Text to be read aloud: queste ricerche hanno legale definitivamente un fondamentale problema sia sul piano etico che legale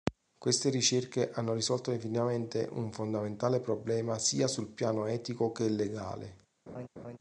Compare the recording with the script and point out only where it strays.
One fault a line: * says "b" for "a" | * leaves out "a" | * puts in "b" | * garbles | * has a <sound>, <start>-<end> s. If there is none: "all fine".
* says "risolto" for "legale"
* has a laugh, 6.7-7.2 s